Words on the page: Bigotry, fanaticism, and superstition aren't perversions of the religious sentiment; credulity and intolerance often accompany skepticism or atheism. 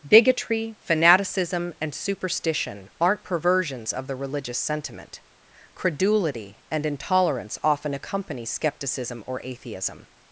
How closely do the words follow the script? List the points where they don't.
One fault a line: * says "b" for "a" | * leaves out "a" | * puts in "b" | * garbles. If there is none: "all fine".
all fine